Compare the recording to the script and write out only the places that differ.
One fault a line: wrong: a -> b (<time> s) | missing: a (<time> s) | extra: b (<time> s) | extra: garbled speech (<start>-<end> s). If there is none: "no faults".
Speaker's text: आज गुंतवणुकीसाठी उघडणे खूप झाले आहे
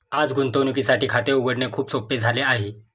extra: खाते (1.1 s)
extra: सोपे (1.9 s)